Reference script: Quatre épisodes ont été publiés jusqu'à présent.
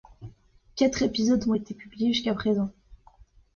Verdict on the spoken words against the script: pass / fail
pass